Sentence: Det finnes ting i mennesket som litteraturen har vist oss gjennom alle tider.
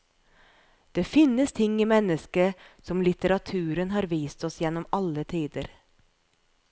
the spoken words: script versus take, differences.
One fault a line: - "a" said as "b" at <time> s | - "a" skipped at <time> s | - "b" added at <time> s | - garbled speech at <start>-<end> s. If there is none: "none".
none